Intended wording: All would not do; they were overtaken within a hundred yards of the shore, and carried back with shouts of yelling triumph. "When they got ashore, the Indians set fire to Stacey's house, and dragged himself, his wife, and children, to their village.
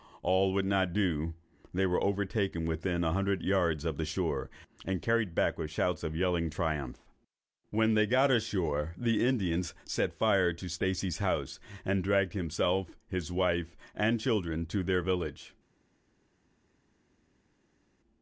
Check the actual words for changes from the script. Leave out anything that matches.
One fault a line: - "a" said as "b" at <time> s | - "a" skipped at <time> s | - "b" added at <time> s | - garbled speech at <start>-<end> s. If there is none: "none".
none